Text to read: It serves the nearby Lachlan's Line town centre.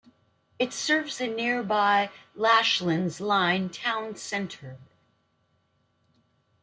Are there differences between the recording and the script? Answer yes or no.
no